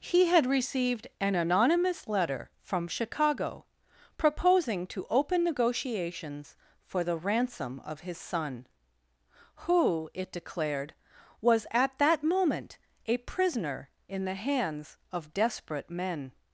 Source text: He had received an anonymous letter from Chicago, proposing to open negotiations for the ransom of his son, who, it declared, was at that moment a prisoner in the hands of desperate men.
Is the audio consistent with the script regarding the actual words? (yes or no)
yes